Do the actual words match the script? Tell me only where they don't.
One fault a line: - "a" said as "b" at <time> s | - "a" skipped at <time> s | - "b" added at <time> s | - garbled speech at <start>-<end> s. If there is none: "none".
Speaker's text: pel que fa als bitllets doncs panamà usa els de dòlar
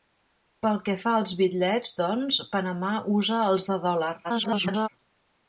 - garbled speech at 4.2-4.9 s